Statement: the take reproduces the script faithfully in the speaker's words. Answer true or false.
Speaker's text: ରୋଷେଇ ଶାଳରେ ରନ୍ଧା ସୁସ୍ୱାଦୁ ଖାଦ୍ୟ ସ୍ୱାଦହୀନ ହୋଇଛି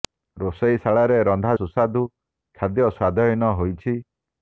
true